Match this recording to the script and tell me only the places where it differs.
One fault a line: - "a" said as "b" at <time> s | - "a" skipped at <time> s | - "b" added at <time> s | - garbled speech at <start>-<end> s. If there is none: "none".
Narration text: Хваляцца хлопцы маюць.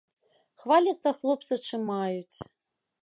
- "чым" added at 1.7 s